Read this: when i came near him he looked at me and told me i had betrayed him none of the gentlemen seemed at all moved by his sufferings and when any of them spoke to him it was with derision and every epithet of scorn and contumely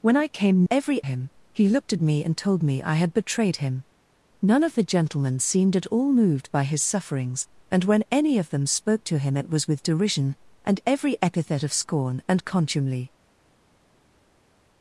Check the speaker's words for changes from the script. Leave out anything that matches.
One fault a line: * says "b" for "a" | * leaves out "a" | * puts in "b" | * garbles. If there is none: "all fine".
* says "every" for "near"